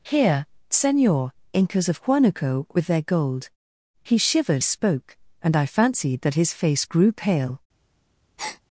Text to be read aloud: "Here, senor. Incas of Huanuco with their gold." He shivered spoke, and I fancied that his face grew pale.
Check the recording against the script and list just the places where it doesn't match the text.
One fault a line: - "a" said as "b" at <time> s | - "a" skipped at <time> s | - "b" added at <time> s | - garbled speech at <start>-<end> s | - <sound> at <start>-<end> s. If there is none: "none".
- breath at 8.4-8.6 s